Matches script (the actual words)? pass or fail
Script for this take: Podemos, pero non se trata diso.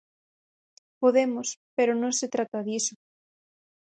pass